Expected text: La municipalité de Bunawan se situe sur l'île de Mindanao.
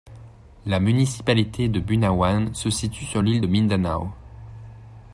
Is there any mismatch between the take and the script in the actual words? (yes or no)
no